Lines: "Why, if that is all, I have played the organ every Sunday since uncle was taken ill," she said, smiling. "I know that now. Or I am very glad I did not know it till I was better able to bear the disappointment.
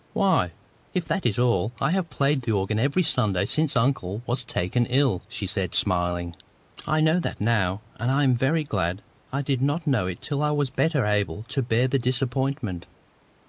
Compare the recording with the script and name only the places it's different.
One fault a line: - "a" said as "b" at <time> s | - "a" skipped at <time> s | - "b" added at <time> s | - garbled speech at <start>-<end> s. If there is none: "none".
- "Or" said as "And" at 8.0 s